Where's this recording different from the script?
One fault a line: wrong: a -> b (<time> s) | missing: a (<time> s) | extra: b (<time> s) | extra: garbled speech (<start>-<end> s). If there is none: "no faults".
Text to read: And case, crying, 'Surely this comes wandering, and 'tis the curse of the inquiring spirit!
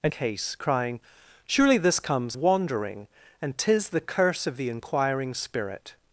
no faults